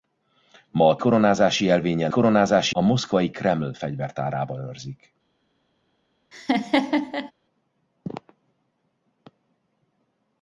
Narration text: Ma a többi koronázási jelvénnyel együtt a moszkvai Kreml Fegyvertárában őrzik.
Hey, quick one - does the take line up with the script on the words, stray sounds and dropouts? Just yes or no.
no